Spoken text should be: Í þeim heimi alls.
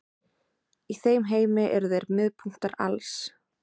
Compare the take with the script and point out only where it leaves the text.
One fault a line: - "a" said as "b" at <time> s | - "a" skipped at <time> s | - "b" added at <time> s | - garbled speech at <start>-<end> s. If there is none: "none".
- "eru þeir miðpunktar" added at 1.8 s